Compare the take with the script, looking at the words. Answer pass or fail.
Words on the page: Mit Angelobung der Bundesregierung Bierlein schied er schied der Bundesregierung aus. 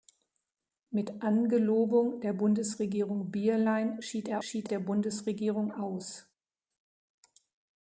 pass